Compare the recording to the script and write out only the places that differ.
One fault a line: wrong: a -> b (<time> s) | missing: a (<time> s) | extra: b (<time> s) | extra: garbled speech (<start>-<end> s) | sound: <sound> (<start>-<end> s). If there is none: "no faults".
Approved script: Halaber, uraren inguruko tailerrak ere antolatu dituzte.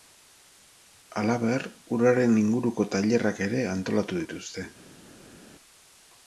no faults